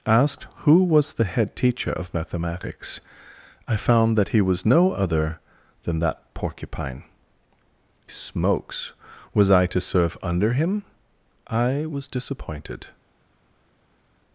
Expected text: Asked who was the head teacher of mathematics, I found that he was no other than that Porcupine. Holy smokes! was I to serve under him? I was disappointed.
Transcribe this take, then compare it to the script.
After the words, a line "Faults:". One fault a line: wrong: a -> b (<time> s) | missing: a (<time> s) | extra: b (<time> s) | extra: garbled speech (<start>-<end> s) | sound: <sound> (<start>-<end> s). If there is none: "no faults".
Asked who was the head teacher of mathematics, I found that he was no other than that Porcupine. Smokes! was I to serve under him? I was disappointed.
Faults:
missing: Holy (7.0 s)